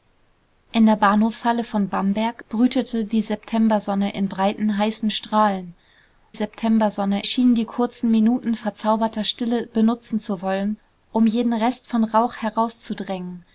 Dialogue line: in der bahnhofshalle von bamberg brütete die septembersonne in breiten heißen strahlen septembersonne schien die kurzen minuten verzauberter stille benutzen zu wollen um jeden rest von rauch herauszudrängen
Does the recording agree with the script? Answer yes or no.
yes